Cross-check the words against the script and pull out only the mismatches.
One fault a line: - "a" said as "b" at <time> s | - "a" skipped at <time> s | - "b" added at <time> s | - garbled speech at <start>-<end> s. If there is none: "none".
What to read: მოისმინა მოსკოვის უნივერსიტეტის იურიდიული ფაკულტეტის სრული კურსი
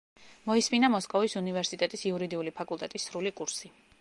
none